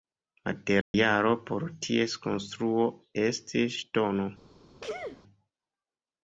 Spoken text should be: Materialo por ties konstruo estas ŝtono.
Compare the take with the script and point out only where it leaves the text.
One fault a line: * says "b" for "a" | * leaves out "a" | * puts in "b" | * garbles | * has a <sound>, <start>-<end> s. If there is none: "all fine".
* has a dropout, 0.8-0.9 s
* says "estis" for "estas"
* has a sneeze, 4.8-5.2 s